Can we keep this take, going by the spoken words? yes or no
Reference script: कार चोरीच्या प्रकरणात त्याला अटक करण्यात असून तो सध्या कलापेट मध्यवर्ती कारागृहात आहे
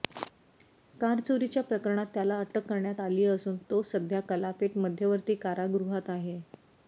no